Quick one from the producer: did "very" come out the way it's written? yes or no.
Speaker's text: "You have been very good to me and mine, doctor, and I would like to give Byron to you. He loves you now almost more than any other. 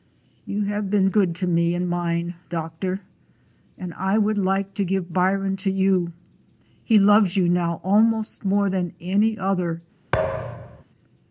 no